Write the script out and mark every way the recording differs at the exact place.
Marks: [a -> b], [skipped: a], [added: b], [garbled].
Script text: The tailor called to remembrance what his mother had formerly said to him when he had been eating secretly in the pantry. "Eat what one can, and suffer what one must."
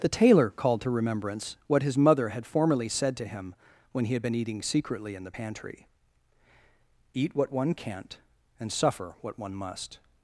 The tailor called to remembrance what his mother had formerly said to him when he had been eating secretly in the pantry. "Eat what one [can, -> can't] and suffer what one must."